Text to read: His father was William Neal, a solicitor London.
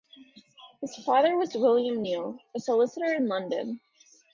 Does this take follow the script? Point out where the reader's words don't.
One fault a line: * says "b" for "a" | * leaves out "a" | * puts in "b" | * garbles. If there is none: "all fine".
* puts in "in"